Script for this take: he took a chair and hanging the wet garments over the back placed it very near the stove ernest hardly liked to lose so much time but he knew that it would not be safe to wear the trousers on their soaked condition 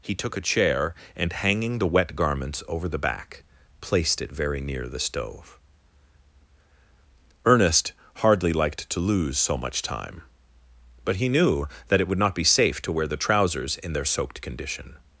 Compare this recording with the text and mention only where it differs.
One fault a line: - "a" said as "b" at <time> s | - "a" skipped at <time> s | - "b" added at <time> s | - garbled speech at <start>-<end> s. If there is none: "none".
- "on" said as "in" at 13.8 s